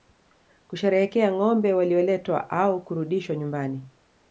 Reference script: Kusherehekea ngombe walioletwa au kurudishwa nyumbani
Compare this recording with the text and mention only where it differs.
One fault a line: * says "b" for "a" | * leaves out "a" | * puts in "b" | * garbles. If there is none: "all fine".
all fine